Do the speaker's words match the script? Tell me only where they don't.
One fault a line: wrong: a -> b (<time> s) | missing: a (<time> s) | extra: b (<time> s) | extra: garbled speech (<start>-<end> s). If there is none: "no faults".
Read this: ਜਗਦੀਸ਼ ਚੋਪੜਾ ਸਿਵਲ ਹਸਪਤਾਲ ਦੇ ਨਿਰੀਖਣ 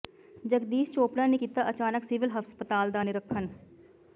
extra: ਨੇ ਕੀਤਾ ਅਚਾਨਕ (1.3 s)
wrong: ਦੇ -> ਦਾ (2.9 s)